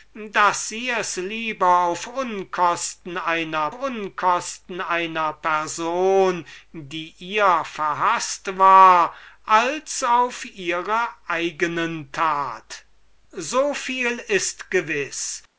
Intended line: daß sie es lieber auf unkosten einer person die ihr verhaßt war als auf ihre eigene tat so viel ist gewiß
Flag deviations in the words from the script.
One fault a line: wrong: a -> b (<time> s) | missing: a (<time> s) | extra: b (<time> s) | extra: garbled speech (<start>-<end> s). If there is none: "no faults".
extra: unkosten einer (3.7 s)